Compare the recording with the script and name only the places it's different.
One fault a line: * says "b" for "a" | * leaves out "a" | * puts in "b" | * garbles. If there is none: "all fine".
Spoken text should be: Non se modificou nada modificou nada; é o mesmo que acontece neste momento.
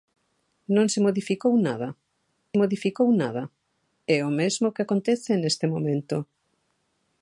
all fine